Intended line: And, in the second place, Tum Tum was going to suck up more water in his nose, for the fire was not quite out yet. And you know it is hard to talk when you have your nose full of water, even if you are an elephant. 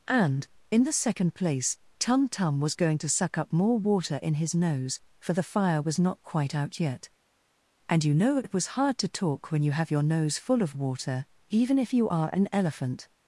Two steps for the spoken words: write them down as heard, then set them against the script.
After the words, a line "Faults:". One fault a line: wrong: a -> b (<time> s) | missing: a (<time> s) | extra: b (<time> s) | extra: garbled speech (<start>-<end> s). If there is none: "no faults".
And, in the second place, Tum Tum was going to suck up more water in his nose, for the fire was not quite out yet. And you know it was hard to talk when you have your nose full of water, even if you are an elephant.
Faults:
wrong: is -> was (8.5 s)